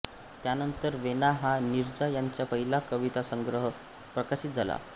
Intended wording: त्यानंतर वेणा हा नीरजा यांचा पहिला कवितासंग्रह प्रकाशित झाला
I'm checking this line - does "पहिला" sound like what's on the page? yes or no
yes